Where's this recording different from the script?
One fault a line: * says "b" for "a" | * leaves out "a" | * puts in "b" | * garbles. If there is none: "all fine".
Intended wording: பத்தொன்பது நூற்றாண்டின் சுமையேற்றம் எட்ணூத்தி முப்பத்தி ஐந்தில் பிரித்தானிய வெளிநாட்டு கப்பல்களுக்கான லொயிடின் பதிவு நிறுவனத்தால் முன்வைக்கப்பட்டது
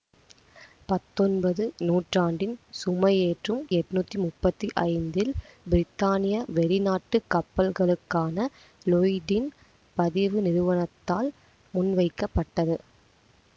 all fine